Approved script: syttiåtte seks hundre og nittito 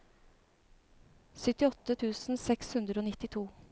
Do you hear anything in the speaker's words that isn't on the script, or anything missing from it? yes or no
yes